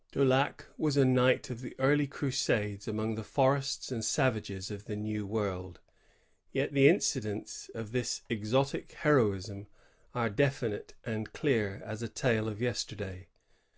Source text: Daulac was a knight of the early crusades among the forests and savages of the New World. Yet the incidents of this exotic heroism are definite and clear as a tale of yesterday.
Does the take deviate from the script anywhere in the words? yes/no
no